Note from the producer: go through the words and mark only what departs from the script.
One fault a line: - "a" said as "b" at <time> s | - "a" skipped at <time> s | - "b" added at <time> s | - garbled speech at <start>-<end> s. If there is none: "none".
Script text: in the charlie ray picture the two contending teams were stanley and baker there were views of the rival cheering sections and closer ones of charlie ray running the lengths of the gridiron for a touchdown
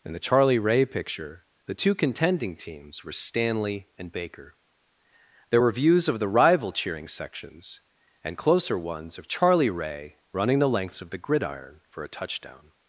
none